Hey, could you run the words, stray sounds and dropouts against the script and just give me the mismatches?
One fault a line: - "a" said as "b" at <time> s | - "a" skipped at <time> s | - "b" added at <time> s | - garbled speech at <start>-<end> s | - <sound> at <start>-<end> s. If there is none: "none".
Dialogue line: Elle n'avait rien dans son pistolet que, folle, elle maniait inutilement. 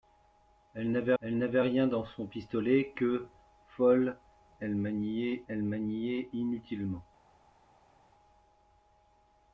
- "elle n'avait" added at 1.2 s
- "elle maniait" added at 5.5 s